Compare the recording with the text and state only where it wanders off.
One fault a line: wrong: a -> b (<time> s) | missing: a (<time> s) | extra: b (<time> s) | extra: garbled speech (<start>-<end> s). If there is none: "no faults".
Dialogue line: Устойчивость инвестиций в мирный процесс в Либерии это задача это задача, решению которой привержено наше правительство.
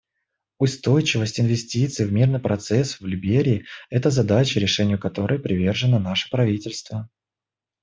missing: это задача (4.6 s)